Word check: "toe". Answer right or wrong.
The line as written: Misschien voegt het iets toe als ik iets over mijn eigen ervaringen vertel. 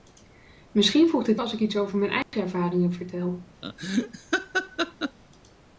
wrong